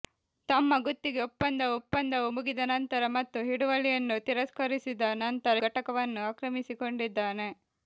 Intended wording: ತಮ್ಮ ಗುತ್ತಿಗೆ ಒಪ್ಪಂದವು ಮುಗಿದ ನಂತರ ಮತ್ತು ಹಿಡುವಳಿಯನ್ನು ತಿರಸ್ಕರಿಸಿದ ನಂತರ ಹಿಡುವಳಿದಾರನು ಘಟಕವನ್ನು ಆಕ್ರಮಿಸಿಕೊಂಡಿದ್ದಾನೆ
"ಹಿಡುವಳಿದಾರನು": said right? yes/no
no